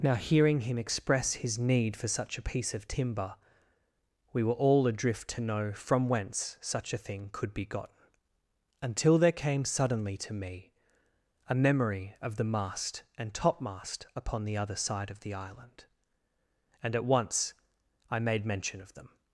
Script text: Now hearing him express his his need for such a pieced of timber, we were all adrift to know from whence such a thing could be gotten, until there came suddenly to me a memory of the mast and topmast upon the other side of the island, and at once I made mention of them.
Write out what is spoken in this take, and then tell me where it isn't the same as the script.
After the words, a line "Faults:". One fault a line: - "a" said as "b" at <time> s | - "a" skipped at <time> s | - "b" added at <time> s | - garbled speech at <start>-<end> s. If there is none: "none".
Now hearing him express his need for such a piece of timber, we were all adrift to know from whence such a thing could be gotten, until there came suddenly to me a memory of the mast and topmast upon the other side of the island, and at once I made mention of them.
Faults:
- "his" skipped at 1.6 s
- "pieced" said as "piece" at 2.4 s